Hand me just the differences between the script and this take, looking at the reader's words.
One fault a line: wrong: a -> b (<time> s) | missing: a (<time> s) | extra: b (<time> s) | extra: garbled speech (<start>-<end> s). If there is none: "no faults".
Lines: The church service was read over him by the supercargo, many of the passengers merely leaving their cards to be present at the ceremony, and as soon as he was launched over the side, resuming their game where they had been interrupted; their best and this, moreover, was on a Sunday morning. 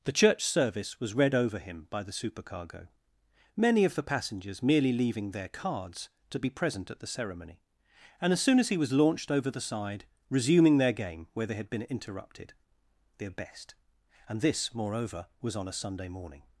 no faults